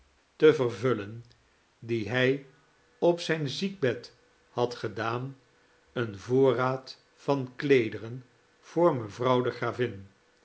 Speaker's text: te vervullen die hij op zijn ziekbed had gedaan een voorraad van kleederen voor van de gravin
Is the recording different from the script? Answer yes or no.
yes